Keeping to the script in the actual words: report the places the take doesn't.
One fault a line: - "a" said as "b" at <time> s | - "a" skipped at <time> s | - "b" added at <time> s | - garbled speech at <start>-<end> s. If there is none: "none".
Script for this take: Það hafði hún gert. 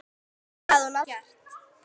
none